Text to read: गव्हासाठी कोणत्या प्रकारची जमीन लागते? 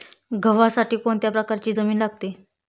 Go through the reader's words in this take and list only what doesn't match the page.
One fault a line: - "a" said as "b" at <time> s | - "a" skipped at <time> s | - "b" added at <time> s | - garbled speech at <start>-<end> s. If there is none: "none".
none